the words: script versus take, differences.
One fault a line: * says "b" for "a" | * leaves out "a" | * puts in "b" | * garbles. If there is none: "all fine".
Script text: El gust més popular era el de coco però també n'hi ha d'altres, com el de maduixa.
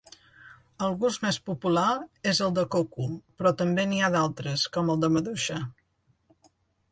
* says "és" for "era"